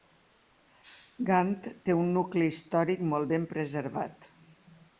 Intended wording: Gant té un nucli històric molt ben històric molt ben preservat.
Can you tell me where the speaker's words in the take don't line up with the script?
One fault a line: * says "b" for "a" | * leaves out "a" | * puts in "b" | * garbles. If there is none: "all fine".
* leaves out "històric molt ben"